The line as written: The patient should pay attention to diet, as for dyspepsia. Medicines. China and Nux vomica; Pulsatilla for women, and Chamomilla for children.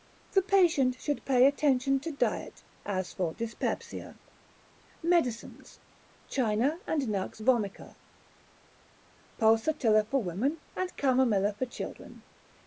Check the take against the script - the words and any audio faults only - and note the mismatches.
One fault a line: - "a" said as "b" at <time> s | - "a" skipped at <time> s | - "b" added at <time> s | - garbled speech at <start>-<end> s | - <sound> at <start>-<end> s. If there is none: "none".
none